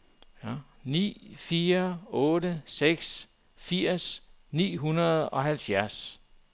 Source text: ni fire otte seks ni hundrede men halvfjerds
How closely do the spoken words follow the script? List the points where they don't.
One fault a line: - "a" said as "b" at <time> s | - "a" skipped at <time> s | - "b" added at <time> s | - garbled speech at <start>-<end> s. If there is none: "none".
- "firs" added at 3.6 s
- "men" said as "og" at 5.3 s